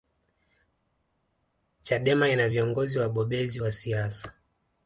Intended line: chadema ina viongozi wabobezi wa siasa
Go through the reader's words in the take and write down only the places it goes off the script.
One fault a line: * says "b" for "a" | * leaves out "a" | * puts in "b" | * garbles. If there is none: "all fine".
all fine